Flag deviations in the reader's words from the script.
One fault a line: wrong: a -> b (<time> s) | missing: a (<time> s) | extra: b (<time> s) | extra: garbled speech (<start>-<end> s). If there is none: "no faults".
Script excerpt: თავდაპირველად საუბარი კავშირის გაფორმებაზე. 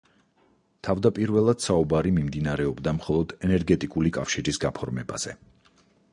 extra: მიმდინარეობდა მხოლოდ ენერგეტიკული (2.1 s)